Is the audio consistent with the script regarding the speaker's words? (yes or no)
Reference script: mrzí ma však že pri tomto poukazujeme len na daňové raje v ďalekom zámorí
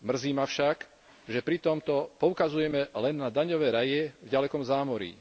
yes